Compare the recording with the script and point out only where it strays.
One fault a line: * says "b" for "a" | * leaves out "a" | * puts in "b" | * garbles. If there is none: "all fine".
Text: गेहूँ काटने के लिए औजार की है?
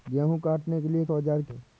all fine